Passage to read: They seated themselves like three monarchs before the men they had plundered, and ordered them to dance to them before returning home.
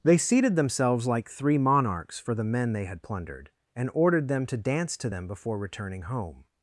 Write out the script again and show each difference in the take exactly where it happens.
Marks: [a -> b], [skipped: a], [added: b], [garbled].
They seated themselves like three monarchs [before -> for] the men they had plundered, and ordered them to dance to them before returning home.